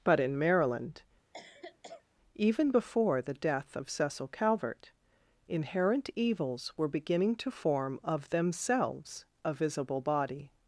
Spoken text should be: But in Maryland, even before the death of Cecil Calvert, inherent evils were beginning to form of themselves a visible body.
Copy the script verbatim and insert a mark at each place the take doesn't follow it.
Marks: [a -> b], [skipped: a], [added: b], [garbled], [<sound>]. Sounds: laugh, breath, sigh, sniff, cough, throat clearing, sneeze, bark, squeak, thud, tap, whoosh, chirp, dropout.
But in Maryland, [cough] even before the death of Cecil Calvert, inherent evils were beginning to form of themselves a visible body.